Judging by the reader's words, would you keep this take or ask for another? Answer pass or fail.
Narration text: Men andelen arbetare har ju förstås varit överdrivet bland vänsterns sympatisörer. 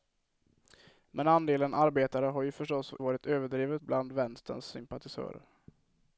pass